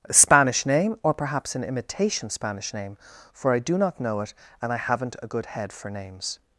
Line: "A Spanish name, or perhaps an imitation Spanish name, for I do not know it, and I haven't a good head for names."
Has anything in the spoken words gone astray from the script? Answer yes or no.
no